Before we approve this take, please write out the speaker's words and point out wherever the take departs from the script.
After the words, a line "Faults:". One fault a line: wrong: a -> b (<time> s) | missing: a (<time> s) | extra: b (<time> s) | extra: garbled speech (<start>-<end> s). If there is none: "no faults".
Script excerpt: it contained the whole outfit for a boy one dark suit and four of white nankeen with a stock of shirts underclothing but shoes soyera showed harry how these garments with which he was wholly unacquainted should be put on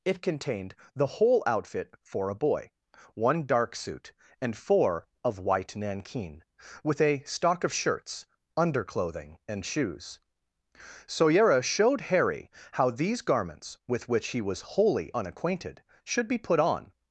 it contained the whole outfit for a boy one dark suit and four of white nankeen with a stock of shirts underclothing and shoes soyera showed harry how these garments with which he was wholly unacquainted should be put on
Faults:
wrong: but -> and (9.5 s)